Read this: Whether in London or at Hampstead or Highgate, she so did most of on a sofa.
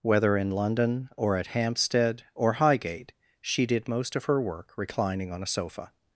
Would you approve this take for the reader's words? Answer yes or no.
no